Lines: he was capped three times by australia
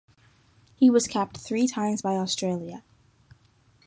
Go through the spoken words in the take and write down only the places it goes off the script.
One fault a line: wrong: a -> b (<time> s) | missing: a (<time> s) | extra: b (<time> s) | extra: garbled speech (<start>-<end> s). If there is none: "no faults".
no faults